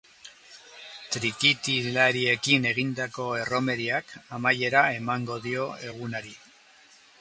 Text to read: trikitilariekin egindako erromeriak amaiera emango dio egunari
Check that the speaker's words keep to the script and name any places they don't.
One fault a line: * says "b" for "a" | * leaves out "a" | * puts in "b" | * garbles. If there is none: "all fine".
all fine